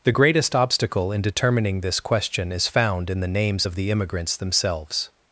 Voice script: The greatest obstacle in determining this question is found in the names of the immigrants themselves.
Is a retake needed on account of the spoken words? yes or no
no